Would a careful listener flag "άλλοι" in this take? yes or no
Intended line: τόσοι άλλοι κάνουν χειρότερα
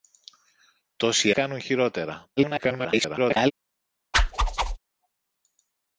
yes